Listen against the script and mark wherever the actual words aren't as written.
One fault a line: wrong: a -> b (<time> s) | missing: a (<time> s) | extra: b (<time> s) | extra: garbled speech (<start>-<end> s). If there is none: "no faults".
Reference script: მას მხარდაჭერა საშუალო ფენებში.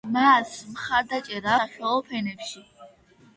no faults